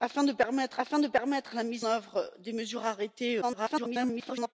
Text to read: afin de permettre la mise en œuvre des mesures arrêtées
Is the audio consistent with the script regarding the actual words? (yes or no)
no